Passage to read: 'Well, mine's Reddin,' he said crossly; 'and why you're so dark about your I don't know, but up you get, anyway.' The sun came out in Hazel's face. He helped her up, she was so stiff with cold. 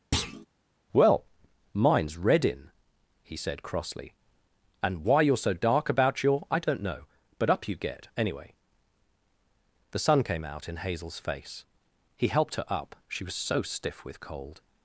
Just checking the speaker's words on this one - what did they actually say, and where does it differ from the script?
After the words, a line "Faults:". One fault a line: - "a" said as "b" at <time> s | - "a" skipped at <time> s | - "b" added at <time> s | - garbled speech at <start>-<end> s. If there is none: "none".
'Well, mine's Reddin,' he said crossly; 'and why you're so dark about your I don't know, but up you get, anyway.' The sun came out in Hazel's face. He helped her up, she was so stiff with cold.
Faults:
none